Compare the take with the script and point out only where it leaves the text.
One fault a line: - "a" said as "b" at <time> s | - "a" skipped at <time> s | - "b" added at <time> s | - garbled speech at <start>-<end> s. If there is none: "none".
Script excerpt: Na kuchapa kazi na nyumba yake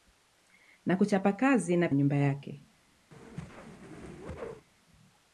none